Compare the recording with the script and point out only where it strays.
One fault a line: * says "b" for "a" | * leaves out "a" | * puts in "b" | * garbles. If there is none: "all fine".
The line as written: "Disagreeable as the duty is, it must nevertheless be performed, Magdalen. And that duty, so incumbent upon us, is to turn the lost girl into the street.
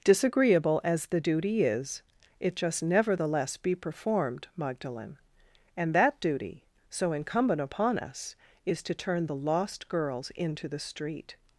* says "just" for "must"
* says "girls" for "girl"